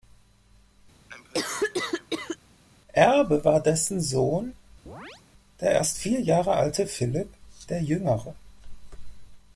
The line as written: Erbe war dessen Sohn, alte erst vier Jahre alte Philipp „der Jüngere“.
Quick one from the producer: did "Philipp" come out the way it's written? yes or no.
yes